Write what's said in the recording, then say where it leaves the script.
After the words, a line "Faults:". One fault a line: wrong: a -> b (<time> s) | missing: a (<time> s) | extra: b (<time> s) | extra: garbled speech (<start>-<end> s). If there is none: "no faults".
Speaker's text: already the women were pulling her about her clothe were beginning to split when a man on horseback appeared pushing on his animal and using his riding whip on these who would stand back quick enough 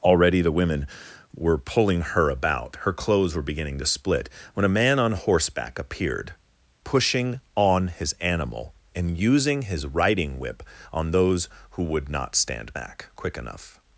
already the women were pulling her about her clothes were beginning to split when a man on horseback appeared pushing on his animal and using his riding whip on those who would not stand back quick enough
Faults:
wrong: clothe -> clothes (2.9 s)
wrong: these -> those (11.1 s)
extra: not (12.1 s)